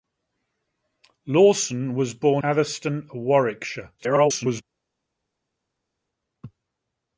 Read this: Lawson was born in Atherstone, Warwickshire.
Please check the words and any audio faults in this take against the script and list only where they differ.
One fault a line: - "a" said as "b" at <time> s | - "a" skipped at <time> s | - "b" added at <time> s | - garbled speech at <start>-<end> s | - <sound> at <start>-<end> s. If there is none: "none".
- "in" skipped at 2.4 s
- garbled speech at 4.0-4.6 s